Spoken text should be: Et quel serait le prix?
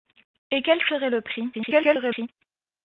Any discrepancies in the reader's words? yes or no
yes